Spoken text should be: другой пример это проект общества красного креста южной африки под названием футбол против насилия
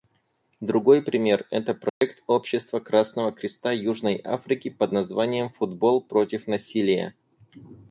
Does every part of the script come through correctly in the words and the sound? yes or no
no